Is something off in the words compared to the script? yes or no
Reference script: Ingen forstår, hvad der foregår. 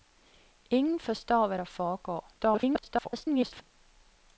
yes